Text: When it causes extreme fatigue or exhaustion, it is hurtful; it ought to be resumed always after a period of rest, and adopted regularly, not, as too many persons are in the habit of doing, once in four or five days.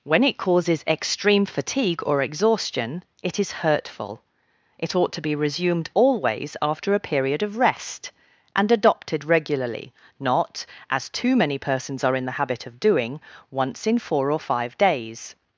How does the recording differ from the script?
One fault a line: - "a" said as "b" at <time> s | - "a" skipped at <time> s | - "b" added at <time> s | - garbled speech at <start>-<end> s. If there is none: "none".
none